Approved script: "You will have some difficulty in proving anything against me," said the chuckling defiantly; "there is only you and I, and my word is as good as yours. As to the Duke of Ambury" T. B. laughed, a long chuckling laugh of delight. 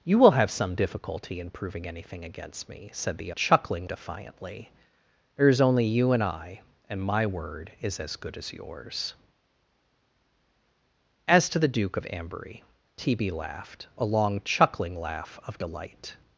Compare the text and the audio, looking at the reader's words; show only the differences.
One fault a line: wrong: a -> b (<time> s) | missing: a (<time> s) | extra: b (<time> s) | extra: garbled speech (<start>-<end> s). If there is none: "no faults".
no faults